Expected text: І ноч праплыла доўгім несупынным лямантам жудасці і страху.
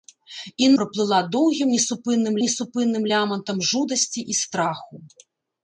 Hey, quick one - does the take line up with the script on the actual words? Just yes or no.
no